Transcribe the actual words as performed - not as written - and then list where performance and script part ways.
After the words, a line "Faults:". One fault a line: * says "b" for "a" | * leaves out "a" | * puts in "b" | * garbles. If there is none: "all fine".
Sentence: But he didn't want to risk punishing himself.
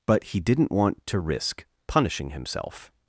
But he didn't want to risk punishing himself.
Faults:
all fine